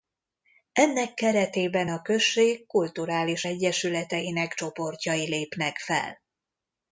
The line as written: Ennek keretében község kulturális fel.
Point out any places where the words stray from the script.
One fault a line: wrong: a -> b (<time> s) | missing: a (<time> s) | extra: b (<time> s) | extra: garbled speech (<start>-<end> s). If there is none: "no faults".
extra: a (1.9 s)
extra: egyesületeinek csoportjai lépnek (3.4 s)